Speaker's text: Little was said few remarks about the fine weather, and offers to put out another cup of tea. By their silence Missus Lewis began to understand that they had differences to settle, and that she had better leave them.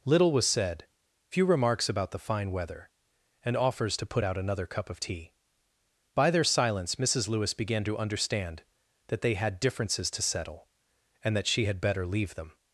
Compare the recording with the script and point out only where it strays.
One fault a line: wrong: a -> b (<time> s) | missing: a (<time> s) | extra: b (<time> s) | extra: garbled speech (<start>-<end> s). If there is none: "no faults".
no faults